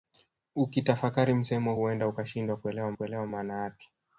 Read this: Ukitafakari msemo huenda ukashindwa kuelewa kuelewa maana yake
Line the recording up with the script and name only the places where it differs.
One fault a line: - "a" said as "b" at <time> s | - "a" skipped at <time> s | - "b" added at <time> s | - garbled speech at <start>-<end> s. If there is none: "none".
none